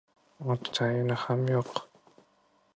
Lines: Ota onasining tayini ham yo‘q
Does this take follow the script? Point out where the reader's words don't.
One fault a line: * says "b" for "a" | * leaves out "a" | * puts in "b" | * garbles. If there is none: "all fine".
* leaves out "onasining"